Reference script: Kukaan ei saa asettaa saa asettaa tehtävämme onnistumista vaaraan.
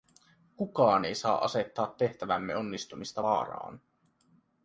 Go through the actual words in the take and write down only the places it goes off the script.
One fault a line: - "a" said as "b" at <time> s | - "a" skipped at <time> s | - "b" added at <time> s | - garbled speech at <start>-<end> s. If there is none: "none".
- "saa asettaa" skipped at 1.9 s